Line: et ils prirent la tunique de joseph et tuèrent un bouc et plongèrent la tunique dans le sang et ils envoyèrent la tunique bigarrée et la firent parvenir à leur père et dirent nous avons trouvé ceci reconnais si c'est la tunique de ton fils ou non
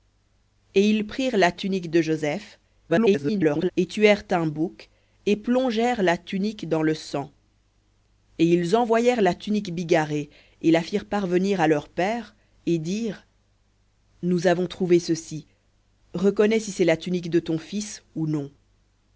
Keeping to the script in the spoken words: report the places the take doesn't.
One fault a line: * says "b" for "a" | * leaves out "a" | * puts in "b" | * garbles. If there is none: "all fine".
* garbles